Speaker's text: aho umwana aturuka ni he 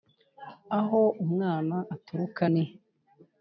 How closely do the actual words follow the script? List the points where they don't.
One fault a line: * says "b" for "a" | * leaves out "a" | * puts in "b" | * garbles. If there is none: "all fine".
all fine